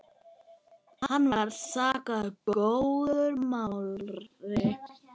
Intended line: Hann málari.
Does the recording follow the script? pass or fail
fail